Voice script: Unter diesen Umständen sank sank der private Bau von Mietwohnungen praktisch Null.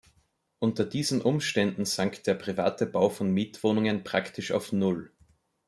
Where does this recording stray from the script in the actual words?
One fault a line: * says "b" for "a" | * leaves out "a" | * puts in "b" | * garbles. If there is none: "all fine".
* leaves out "sank"
* puts in "auf"